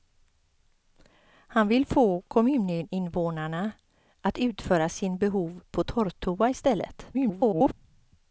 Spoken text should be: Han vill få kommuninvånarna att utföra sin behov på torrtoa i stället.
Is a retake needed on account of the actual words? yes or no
yes